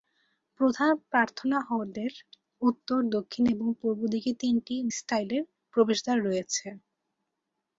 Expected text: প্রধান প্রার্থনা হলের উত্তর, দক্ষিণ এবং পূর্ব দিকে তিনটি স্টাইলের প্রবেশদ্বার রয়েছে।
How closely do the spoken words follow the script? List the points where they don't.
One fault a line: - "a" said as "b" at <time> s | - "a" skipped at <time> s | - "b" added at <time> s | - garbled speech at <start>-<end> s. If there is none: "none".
none